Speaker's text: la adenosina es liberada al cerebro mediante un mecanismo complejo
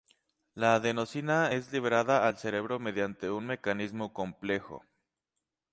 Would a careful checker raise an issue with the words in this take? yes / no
no